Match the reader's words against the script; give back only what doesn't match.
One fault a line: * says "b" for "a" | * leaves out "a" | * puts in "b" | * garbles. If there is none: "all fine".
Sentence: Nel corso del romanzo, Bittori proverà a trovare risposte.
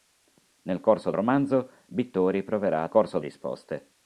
* leaves out "del"
* says "corso" for "trovare"